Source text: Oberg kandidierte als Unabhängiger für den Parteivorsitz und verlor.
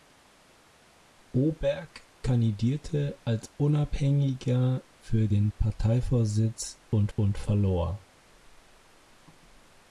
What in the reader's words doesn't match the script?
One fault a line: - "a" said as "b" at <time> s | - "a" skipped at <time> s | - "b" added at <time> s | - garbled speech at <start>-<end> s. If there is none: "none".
- "und" added at 7.1 s